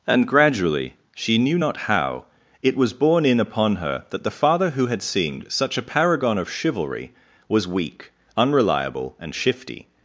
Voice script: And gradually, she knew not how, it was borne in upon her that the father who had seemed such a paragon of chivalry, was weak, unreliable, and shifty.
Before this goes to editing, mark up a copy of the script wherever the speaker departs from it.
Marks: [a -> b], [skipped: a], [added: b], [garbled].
And gradually, she knew not how, it was borne in upon her that the father who had seemed such a paragon of chivalry, was weak, unreliable, and shifty.